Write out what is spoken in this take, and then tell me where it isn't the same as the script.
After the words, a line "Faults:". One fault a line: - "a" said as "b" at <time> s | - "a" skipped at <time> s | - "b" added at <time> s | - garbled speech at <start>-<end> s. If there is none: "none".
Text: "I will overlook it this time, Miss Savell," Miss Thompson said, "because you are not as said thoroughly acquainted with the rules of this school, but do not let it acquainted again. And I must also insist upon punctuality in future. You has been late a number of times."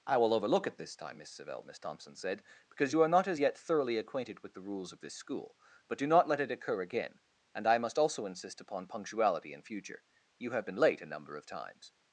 "I will overlook it this time, Miss Savell," Miss Thompson said, "because you are not as yet thoroughly acquainted with the rules of this school, but do not let it occur again. And I must also insist upon punctuality in future. You have been late a number of times."
Faults:
- "said" said as "yet" at 3.4 s
- "acquainted" said as "occur" at 6.5 s
- "has" said as "have" at 10.5 s